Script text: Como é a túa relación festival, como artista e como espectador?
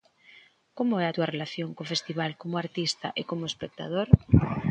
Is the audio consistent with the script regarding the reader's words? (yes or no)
no